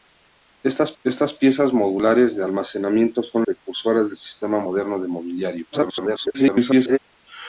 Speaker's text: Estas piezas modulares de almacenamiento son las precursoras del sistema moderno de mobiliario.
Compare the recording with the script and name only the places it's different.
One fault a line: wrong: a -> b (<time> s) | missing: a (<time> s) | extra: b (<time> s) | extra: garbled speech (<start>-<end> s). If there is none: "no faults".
extra: estas (1.0 s)
missing: las (3.4 s)
extra: garbled speech (5.7-7.0 s)